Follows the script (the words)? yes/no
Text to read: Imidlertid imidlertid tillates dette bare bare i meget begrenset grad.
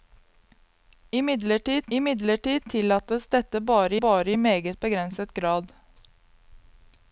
yes